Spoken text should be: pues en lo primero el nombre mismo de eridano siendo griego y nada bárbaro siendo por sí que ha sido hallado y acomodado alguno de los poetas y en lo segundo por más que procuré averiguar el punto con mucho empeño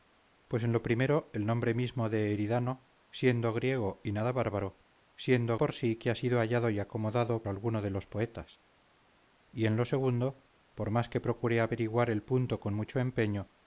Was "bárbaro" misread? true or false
false